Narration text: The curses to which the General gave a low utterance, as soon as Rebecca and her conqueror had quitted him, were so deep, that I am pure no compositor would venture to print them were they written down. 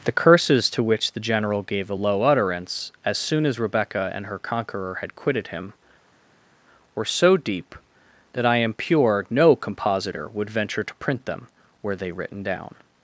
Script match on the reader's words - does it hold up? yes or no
yes